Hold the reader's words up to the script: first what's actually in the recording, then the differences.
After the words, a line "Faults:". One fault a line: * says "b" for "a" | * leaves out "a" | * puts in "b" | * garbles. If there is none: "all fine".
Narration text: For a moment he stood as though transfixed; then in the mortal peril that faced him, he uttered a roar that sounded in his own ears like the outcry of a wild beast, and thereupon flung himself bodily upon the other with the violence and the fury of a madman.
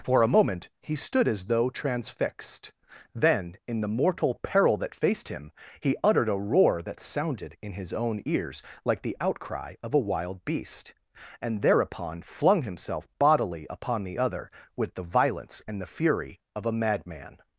For a moment he stood as though transfixed; then in the mortal peril that faced him, he uttered a roar that sounded in his own ears like the outcry of a wild beast, and thereupon flung himself bodily upon the other with the violence and the fury of a madman.
Faults:
all fine